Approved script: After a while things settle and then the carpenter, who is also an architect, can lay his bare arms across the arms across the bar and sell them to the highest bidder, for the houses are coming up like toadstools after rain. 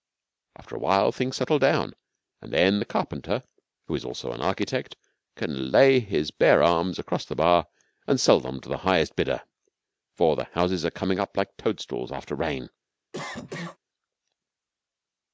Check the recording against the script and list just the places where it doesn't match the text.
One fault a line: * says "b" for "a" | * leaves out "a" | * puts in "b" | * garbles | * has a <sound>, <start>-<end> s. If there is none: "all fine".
* puts in "down"
* leaves out "arms across the"
* has a cough, 13.1-13.8 s